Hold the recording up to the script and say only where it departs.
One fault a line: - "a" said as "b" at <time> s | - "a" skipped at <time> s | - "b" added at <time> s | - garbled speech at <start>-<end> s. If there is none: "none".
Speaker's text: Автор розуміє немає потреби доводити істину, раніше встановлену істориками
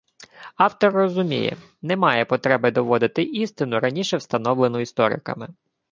none